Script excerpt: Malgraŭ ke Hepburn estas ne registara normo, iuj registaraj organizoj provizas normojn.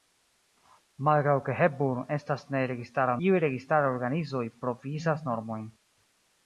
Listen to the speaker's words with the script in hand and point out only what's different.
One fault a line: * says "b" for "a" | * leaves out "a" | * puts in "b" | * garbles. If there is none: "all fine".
* leaves out "normo"